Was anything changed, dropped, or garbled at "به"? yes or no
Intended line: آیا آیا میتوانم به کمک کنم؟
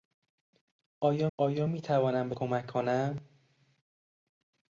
no